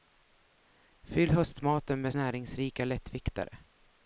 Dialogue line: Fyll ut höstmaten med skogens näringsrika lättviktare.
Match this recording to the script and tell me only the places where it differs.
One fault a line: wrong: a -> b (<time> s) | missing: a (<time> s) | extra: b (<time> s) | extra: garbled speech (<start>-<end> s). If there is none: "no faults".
missing: ut (1.3 s)
missing: skogens (2.1 s)